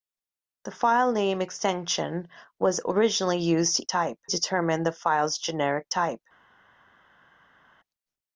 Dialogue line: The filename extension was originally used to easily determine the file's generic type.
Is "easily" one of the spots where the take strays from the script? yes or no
yes